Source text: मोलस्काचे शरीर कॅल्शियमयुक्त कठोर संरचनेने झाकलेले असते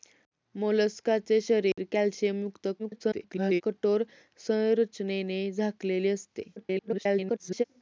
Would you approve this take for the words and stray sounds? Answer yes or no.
no